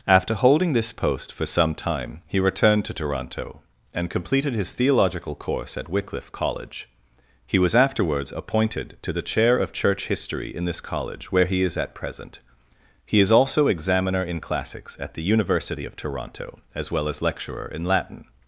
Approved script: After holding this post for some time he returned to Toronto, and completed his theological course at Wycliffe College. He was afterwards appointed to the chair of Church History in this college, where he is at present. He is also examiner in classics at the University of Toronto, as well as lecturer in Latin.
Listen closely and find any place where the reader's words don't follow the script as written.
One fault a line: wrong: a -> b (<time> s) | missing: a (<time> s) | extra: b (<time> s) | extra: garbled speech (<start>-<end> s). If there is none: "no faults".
no faults